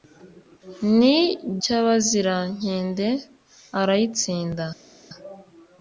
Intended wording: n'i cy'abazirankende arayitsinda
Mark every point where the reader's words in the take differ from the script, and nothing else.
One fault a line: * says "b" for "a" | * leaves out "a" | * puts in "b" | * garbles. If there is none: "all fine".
all fine